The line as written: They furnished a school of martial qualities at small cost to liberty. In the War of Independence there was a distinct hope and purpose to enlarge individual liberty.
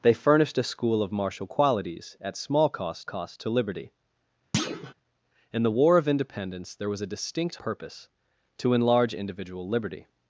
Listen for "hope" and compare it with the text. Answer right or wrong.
wrong